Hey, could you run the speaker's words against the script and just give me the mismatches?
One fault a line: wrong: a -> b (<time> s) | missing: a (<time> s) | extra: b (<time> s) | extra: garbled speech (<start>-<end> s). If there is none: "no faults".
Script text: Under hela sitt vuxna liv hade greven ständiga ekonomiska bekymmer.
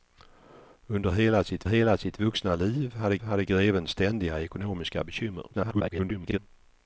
extra: hela sitt (1.7 s)
extra: hade (3.2 s)
extra: garbled speech (5.5-6.4 s)